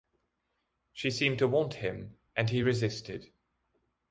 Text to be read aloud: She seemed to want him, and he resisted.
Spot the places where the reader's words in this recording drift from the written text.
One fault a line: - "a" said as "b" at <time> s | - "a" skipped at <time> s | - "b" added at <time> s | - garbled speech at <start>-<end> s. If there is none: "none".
none